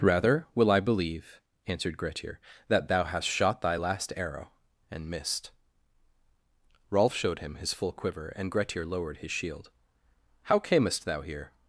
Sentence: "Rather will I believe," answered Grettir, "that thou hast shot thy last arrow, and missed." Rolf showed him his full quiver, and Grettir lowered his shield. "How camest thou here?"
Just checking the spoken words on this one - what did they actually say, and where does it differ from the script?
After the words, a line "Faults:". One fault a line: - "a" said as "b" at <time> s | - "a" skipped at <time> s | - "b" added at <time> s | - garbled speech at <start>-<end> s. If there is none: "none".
"Rather will I believe," answered Grettir, "that thou hast shot thy last arrow, and missed." Rolf showed him his full quiver, and Grettir lowered his shield. "How camest thou here?"
Faults:
none